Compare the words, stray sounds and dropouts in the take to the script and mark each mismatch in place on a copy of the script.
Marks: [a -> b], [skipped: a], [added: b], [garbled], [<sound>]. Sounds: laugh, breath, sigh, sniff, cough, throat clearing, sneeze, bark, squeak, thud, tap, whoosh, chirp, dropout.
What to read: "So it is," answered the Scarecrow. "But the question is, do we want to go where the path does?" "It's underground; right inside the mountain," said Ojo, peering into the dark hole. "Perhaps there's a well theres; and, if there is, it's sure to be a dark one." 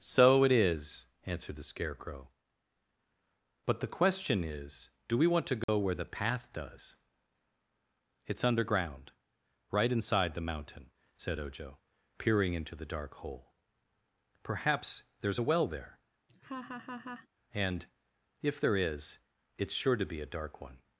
"So it is," answered the Scarecrow. "But the question is, do we want to go [dropout] where the path does?" "It's underground; right inside the mountain," said Ojo, peering into the dark hole. "Perhaps there's a well [theres; -> there] [laugh] and, if there is, it's sure to be a dark one."